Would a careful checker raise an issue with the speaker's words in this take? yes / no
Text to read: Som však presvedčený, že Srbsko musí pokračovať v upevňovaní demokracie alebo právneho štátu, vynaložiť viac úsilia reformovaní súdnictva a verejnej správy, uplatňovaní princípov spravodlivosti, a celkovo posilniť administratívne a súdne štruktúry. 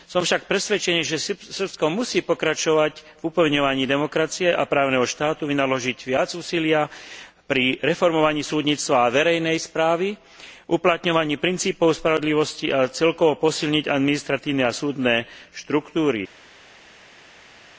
yes